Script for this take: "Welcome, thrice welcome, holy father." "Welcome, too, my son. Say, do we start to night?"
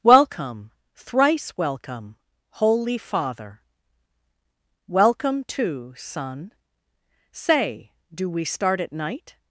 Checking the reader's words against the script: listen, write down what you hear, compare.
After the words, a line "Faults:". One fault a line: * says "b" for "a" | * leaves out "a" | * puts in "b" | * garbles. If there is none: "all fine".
"Welcome, thrice welcome, holy father." "Welcome, too, son. Say, do we start at night?"
Faults:
* leaves out "my"
* says "at" for "to"